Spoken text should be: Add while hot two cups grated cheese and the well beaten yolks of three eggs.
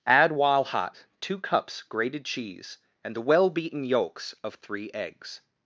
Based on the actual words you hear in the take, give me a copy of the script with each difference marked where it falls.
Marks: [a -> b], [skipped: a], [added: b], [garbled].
Add while hot two cups grated cheese and the well beaten yolks of three eggs.